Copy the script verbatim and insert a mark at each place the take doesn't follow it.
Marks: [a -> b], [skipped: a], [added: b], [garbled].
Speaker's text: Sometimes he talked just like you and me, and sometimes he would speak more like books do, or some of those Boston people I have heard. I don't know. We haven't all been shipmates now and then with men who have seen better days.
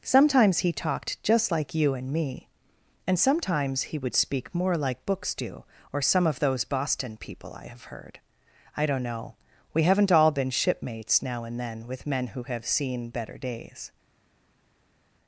Sometimes he talked just like you and me, and sometimes he would speak more like books do, or some of those Boston people I have heard. I don't know. We haven't all been shipmates now and then with men who have seen better days.